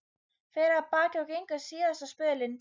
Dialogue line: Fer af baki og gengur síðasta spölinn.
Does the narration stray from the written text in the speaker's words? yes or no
no